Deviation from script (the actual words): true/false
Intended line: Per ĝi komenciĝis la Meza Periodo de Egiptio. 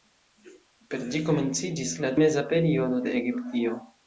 false